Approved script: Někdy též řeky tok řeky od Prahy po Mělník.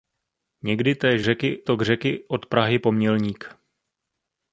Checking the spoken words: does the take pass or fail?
pass